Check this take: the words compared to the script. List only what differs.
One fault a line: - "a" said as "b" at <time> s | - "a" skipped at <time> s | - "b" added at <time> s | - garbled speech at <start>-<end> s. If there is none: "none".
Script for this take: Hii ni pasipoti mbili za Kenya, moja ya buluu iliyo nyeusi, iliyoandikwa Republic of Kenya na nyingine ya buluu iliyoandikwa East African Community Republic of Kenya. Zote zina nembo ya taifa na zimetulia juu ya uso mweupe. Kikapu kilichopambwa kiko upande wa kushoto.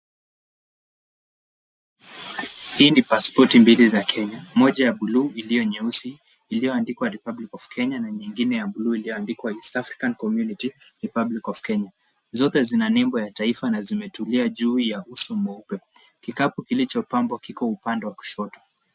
none